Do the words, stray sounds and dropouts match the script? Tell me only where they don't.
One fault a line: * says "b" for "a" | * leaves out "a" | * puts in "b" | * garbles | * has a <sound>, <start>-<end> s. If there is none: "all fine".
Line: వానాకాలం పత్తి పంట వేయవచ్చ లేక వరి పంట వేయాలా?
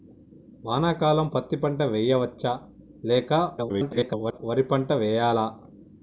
* garbles